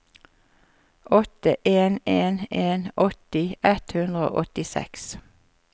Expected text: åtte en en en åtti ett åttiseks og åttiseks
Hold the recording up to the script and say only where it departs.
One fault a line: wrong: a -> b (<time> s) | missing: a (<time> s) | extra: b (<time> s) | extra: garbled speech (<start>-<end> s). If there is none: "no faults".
wrong: åttiseks -> hundre (3.9 s)